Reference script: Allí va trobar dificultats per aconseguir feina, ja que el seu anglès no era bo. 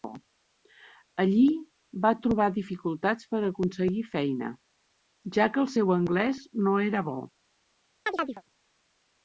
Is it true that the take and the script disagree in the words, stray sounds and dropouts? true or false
true